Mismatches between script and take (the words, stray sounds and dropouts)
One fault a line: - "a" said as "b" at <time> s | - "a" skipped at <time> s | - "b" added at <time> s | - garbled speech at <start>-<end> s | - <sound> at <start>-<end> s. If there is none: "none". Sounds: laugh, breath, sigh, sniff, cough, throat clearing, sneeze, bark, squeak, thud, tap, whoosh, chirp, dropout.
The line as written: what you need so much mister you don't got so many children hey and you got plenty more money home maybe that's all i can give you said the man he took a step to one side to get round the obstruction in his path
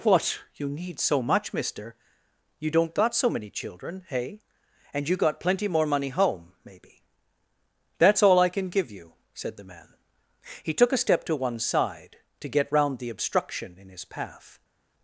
none